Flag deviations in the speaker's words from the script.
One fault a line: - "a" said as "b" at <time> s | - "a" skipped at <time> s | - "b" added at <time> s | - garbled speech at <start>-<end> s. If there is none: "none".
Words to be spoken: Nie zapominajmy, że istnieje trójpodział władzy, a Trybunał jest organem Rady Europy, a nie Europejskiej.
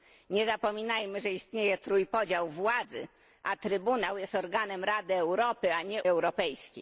none